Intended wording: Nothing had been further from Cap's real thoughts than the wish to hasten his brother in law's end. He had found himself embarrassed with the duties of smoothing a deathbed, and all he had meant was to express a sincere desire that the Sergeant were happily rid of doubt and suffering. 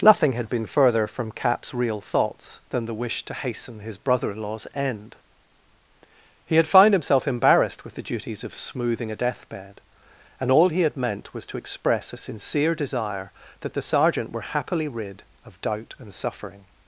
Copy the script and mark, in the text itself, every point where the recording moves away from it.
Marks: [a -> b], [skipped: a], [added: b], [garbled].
Nothing had been further from Cap's real thoughts than the wish to hasten his brother in law's end. He had found himself embarrassed with the duties of smoothing a deathbed, and all he had meant was to express a sincere desire that the Sergeant were happily rid of doubt and suffering.